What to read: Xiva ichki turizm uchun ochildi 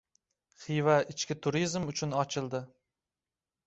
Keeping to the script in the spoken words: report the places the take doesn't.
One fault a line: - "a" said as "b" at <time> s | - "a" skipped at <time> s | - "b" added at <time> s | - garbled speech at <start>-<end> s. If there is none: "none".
none